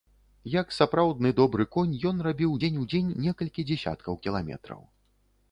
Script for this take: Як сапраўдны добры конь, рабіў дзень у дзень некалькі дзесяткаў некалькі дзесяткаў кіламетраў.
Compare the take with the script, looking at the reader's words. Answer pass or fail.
fail